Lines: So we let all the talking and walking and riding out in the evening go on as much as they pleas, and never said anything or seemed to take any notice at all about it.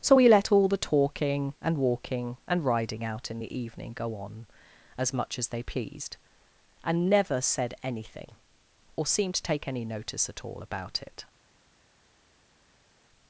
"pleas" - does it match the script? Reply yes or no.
no